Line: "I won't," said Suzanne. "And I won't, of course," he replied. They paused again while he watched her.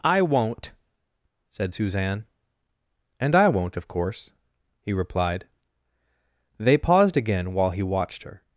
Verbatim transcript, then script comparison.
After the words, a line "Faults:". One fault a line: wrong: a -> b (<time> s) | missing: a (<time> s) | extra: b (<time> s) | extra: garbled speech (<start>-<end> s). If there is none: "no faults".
"I won't," said Suzanne. "And I won't, of course," he replied. They paused again while he watched her.
Faults:
no faults